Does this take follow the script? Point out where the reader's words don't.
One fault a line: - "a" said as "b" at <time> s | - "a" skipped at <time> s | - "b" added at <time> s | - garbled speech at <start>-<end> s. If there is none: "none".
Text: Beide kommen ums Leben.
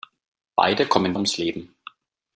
none